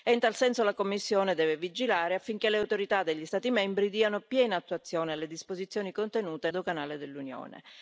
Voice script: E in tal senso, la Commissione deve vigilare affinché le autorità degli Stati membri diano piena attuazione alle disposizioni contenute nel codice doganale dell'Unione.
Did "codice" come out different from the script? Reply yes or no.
yes